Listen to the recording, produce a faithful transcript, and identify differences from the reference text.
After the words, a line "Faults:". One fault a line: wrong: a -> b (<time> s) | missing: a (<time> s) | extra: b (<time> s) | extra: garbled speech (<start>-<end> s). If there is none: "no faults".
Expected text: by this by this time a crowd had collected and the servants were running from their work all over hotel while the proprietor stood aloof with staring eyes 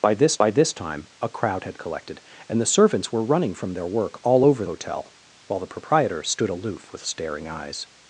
by this by this time a crowd had collected and the servants were running from their work all over hotel while the proprietor stood aloof with staring eyes
Faults:
no faults